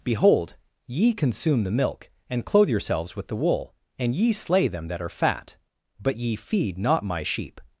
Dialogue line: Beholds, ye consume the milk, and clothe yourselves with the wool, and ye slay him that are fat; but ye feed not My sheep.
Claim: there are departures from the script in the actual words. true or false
true